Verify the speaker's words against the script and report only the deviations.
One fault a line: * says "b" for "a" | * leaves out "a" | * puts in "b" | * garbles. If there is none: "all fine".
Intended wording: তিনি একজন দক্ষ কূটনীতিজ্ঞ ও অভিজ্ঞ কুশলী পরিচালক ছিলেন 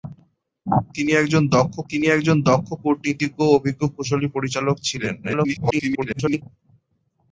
* puts in "তিনি একজন দক্ষ"
* garbles